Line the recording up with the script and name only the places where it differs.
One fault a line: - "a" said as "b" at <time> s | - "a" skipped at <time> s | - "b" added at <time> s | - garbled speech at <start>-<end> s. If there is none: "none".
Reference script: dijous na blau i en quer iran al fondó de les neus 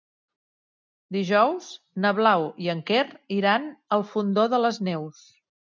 none